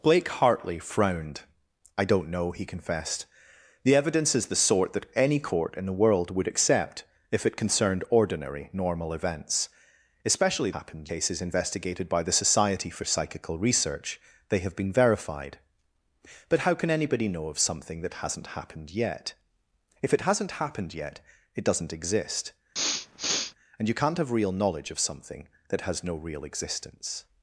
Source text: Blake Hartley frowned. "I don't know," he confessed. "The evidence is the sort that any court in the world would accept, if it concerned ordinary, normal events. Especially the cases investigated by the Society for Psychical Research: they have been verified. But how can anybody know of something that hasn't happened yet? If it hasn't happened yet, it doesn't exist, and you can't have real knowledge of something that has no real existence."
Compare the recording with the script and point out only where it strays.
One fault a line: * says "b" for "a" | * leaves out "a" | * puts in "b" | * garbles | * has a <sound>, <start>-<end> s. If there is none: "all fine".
* says "happened" for "the"
* has a sniff, 22.7-23.5 s